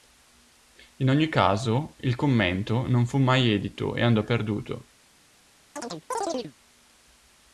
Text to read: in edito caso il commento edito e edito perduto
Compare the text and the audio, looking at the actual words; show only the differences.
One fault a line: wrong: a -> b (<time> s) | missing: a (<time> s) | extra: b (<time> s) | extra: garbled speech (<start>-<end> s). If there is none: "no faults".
wrong: edito -> ogni (1.1 s)
extra: non fu mai (2.9 s)
wrong: edito -> andò (4.0 s)